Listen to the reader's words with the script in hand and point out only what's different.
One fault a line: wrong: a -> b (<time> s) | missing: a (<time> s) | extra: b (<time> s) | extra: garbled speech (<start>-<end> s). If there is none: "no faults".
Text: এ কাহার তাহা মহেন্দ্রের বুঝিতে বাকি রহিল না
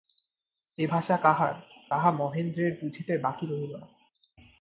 extra: ভাষা (0.8 s)